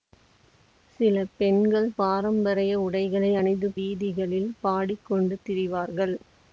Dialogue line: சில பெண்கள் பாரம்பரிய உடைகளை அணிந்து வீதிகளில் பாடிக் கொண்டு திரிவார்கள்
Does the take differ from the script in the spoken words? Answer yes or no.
no